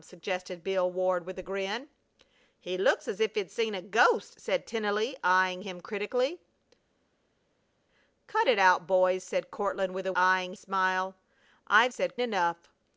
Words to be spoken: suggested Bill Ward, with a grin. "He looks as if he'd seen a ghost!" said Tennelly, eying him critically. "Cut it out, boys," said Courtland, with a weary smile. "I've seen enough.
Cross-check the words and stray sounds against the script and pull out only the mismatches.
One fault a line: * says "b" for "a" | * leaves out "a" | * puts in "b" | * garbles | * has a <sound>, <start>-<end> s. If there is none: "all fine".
* says "eying" for "weary"
* says "said" for "seen"